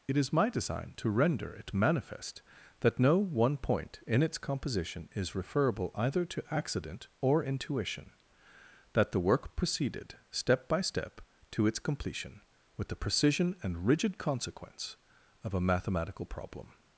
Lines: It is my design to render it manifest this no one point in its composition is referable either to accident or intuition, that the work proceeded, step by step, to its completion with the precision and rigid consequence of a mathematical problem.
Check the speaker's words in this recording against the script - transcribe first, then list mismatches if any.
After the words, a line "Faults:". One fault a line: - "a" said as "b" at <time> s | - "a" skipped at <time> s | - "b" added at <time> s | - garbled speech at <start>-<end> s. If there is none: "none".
It is my design to render it manifest that no one point in its composition is referable either to accident or intuition, that the work proceeded, step by step, to its completion with the precision and rigid consequence of a mathematical problem.
Faults:
- "this" said as "that" at 2.8 s